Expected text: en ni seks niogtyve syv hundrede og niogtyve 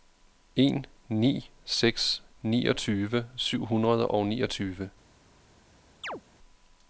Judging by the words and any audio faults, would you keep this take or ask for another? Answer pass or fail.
fail